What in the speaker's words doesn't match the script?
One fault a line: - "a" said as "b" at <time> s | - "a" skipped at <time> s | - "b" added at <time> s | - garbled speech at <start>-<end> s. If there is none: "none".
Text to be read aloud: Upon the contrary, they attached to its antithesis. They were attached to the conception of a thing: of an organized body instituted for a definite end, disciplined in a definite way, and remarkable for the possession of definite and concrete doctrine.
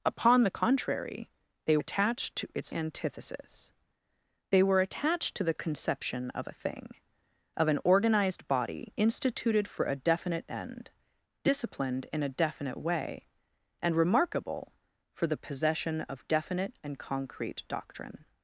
none